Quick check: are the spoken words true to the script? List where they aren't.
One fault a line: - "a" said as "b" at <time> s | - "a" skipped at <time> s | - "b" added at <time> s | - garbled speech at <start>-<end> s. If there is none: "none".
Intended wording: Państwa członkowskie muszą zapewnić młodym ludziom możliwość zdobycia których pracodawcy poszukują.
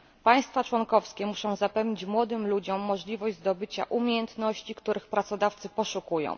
- "umiejętności" added at 3.9 s